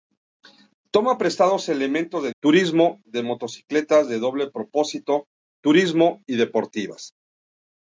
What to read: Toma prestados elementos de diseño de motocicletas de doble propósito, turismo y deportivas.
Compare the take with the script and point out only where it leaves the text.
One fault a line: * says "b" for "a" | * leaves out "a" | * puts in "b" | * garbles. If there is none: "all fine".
* says "turismo" for "diseño"